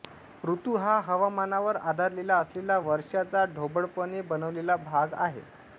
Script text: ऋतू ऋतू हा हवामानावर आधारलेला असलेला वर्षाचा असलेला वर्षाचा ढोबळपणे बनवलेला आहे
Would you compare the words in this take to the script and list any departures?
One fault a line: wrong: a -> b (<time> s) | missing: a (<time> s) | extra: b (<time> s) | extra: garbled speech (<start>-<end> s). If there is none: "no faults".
missing: ऋतू (0.8 s)
missing: असलेला वर्षाचा (3.4 s)
extra: भाग (4.8 s)